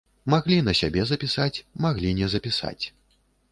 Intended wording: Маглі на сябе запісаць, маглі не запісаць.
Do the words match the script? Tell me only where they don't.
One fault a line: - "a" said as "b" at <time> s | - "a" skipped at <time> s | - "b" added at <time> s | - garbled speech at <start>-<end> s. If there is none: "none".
none